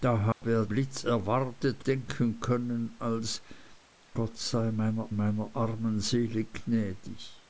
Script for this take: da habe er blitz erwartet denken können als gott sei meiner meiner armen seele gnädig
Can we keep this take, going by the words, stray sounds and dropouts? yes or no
no